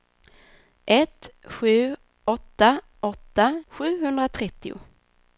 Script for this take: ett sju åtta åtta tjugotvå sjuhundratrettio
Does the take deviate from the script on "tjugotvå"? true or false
true